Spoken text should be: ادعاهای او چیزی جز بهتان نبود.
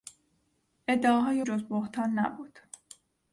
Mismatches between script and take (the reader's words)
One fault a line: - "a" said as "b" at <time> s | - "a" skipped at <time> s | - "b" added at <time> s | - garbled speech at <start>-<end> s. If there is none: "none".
- "او چیزی" skipped at 1.4 s